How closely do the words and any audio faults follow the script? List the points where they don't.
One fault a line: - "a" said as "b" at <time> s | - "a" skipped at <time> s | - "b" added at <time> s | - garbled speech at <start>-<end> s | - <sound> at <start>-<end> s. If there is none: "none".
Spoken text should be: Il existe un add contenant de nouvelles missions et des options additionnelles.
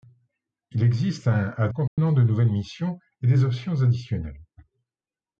- dropout at 1.9-2.0 s